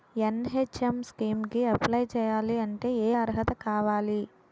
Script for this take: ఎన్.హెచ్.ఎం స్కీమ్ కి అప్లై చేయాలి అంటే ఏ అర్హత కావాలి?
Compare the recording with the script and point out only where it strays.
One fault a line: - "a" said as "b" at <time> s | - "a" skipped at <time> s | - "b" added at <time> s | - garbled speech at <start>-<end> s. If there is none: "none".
none